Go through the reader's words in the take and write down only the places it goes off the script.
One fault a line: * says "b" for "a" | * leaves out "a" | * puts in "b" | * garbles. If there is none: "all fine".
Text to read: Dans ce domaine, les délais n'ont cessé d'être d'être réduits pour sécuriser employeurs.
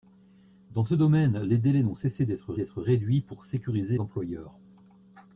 all fine